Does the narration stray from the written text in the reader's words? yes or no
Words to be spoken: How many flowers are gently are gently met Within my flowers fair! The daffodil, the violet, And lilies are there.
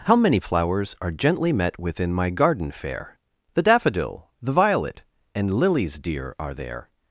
yes